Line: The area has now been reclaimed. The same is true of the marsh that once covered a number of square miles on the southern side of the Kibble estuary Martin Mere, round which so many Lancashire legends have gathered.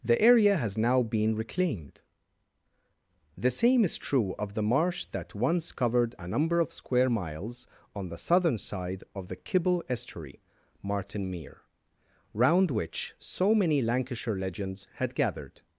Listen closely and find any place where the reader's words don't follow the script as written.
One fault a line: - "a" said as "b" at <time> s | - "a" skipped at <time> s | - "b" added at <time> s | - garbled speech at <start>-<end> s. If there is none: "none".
- "have" said as "had" at 15.0 s